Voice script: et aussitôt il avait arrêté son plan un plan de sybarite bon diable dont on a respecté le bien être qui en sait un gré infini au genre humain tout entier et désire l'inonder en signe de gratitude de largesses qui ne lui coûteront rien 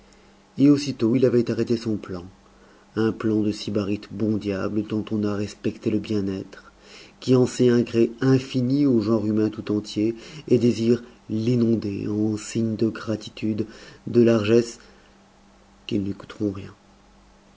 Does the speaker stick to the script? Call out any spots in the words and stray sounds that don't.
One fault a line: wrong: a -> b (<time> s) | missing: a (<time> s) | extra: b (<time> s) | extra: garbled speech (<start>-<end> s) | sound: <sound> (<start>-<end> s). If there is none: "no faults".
no faults